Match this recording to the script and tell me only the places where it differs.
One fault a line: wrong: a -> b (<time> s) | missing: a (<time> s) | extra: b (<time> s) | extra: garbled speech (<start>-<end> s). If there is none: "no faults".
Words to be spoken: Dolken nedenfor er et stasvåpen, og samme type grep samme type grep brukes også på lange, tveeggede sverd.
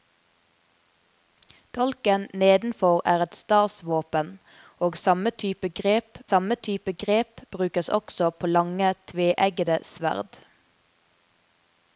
no faults